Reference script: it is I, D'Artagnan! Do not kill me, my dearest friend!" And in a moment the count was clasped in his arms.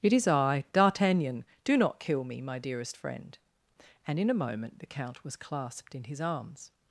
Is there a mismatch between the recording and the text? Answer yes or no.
no